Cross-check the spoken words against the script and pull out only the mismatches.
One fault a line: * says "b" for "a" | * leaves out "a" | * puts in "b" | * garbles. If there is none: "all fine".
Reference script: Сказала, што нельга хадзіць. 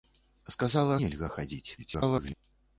* leaves out "што"
* garbles